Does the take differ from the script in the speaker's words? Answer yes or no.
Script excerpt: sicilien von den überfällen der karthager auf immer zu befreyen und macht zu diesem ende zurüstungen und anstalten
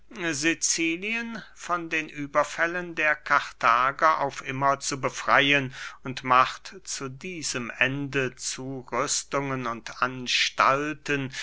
no